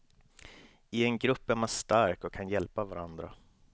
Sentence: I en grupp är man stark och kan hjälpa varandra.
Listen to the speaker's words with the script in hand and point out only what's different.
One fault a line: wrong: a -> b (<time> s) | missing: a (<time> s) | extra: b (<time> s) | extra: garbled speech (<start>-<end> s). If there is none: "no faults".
no faults